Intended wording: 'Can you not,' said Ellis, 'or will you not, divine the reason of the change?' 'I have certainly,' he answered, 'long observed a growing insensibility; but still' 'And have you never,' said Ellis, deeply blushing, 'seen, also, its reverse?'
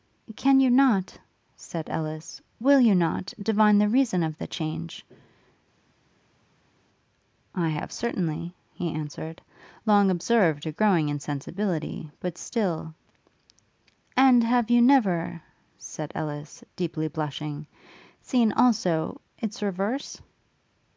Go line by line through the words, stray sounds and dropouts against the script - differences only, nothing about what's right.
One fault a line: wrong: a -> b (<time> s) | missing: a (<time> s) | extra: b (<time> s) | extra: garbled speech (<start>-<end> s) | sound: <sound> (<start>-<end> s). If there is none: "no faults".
missing: or (2.4 s)